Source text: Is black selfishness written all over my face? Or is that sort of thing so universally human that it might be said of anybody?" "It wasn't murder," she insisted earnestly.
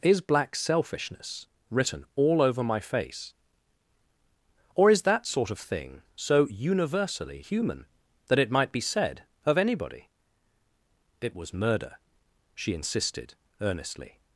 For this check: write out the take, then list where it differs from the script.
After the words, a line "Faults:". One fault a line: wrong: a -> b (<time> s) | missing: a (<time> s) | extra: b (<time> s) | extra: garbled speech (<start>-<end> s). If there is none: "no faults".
Is black selfishness written all over my face? Or is that sort of thing so universally human that it might be said of anybody?" "It was murder," she insisted earnestly.
Faults:
wrong: wasn't -> was (11.3 s)